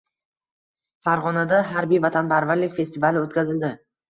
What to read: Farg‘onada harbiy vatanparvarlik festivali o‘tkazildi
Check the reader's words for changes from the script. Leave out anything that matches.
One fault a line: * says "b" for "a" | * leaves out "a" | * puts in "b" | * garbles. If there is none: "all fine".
all fine